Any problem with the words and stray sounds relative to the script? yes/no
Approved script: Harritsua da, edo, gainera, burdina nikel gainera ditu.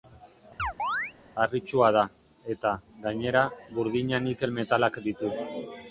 yes